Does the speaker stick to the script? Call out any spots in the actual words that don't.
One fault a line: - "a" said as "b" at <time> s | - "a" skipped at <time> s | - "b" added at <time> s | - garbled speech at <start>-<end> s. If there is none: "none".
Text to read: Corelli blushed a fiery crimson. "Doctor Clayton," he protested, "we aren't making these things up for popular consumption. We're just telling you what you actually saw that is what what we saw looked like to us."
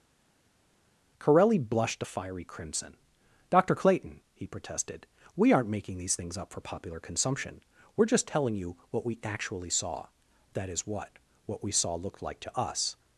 - "you" said as "we" at 9.1 s